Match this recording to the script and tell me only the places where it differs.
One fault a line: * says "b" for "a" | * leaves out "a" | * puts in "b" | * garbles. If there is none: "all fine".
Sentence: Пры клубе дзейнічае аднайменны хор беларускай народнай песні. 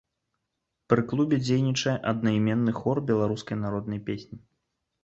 all fine